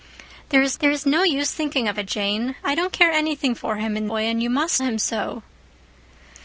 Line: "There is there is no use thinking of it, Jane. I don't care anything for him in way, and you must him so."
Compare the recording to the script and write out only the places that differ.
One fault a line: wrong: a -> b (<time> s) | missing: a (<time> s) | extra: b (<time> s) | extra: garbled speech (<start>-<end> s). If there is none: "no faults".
no faults